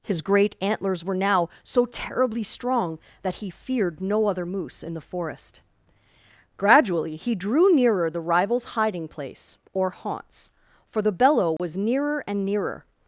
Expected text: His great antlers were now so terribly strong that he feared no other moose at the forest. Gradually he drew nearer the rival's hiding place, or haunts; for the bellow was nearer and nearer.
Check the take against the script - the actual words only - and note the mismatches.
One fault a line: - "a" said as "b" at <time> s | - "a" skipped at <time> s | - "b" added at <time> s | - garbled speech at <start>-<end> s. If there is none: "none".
- "at" said as "in" at 4.8 s